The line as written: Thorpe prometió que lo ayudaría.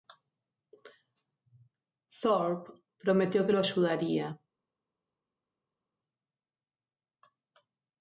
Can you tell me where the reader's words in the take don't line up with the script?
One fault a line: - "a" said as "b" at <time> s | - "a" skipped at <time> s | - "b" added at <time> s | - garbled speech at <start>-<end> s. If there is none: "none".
none